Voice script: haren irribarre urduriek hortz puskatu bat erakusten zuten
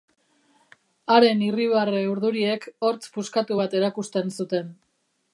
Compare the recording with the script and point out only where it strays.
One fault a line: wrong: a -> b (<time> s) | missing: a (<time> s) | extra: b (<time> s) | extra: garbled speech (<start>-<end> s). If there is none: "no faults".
no faults